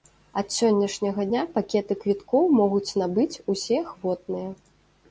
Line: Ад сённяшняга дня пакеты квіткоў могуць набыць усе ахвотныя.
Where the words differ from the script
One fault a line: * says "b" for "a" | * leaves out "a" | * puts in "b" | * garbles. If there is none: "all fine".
all fine